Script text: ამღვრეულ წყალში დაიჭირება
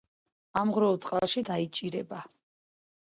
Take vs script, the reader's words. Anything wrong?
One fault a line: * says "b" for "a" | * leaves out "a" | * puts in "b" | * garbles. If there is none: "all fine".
all fine